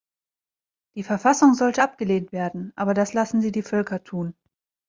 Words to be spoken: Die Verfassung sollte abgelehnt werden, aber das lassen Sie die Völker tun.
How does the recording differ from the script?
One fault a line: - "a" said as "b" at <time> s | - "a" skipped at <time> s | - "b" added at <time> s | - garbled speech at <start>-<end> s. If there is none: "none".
none